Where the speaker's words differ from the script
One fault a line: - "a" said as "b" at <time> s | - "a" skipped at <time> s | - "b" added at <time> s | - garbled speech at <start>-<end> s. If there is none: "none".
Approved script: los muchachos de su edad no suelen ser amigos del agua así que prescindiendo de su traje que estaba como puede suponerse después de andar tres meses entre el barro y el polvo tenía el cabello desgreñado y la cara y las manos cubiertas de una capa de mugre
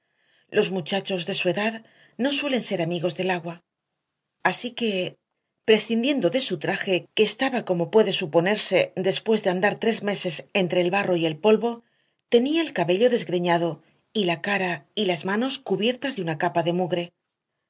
none